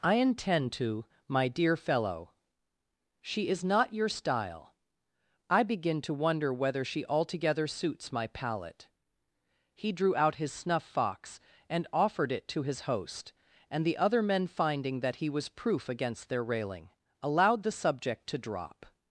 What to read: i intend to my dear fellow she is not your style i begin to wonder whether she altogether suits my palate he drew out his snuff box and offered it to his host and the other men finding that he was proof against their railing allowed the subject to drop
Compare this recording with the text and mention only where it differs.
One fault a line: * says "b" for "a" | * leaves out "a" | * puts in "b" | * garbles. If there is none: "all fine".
* says "fox" for "box"